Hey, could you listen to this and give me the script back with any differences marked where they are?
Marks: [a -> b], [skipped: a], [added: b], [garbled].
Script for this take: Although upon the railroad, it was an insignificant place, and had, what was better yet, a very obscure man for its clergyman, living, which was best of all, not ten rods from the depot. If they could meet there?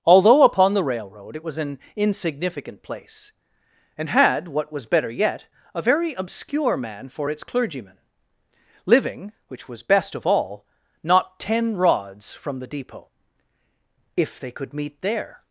Although upon the railroad, it was an insignificant place, and had, what was better yet, a very obscure man for its clergyman, living, which was best of all, not ten rods from the depot. If they could meet there?